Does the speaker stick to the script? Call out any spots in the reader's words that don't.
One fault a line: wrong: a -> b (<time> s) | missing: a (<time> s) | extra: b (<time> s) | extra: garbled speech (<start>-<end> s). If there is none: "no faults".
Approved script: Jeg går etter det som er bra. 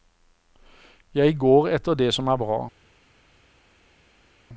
no faults